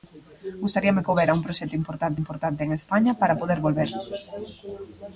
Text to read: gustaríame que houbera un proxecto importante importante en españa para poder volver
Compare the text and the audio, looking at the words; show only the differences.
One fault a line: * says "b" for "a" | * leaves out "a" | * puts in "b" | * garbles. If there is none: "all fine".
all fine